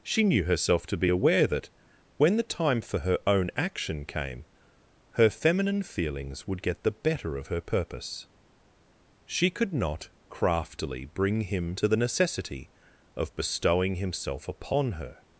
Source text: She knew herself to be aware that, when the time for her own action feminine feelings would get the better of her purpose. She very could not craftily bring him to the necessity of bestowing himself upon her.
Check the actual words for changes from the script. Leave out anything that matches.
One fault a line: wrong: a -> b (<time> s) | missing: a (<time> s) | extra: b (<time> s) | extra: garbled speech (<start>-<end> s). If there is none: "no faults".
extra: came her (4.0 s)
missing: very (9.5 s)